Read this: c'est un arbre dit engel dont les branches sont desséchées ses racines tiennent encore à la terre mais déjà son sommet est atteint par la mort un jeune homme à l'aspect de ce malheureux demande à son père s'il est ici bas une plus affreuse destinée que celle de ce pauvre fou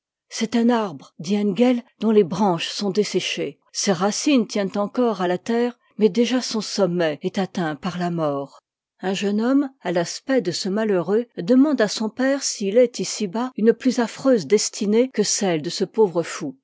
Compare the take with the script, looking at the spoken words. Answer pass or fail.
pass